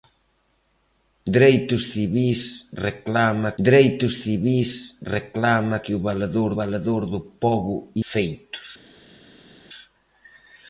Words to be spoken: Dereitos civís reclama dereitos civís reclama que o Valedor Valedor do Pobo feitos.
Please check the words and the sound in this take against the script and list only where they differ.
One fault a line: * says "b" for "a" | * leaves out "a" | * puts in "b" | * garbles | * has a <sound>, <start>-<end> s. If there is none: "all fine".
all fine